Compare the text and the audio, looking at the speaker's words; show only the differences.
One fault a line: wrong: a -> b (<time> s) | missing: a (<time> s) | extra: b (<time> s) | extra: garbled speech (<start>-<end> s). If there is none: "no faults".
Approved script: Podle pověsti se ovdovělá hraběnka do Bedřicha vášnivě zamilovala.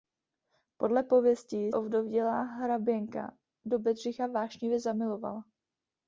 missing: se (1.7 s)